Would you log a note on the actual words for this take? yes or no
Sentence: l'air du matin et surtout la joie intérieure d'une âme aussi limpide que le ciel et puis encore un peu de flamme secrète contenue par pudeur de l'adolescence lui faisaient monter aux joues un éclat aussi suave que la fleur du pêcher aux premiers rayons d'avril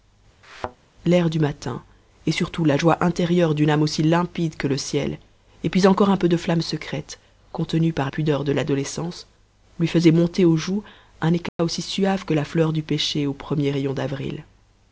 no